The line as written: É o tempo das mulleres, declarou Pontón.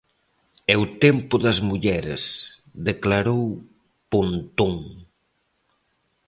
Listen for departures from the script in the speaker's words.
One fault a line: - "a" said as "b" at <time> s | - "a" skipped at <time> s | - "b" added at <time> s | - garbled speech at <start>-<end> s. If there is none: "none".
none